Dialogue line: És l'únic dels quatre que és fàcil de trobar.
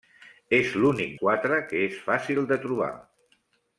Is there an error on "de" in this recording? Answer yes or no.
no